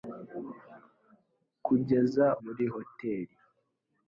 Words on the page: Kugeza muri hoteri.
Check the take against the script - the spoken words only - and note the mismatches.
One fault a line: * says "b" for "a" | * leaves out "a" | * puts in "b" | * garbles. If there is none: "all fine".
all fine